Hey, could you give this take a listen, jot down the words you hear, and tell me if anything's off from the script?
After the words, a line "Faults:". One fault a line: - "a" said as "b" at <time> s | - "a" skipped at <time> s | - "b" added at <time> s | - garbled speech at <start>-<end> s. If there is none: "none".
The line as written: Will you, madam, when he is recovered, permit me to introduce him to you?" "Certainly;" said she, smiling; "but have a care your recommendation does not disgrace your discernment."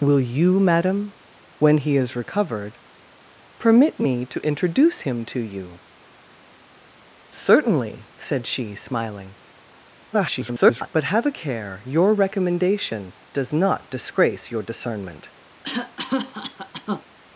Will you, madam, when he is recovered, permit me to introduce him to you?" "Certainly;" said she, smiling; [garbled] "but have a care your recommendation does not disgrace your discernment."
Faults:
- garbled speech at 10.1-10.9 s